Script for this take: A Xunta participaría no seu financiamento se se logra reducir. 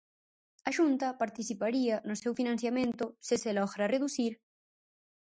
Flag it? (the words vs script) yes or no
no